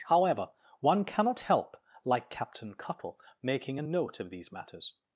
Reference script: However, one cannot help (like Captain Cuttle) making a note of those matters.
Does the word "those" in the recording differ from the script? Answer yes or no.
yes